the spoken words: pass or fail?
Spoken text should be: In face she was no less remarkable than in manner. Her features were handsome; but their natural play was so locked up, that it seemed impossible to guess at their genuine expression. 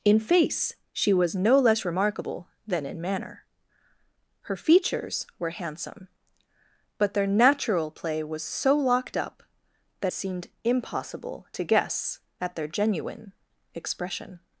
fail